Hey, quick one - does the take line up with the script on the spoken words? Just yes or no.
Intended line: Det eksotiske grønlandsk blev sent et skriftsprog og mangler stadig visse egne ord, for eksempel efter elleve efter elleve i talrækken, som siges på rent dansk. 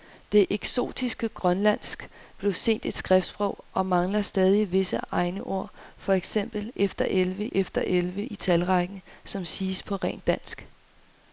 yes